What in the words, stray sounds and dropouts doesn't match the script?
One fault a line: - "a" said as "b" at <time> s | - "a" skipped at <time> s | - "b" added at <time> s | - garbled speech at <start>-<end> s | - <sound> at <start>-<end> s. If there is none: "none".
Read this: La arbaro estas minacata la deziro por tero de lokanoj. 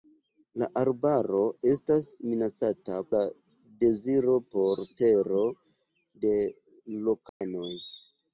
- dropout at 7.3-7.4 s